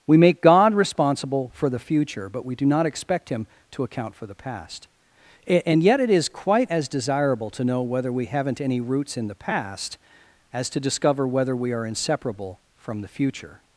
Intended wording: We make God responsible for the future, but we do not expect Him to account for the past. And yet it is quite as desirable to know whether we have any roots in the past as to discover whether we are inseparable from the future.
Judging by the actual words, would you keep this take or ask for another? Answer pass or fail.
fail